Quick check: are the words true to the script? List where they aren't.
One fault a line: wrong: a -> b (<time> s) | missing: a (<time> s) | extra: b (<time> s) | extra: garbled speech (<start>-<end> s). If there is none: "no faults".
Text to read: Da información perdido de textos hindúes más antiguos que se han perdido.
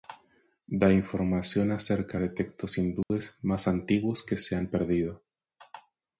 wrong: perdido -> acerca (1.7 s)